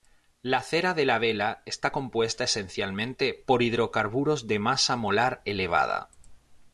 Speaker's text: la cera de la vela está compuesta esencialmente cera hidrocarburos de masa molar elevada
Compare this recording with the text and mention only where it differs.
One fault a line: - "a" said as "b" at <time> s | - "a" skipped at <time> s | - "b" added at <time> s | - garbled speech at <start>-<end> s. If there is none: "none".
- "cera" said as "por" at 3.5 s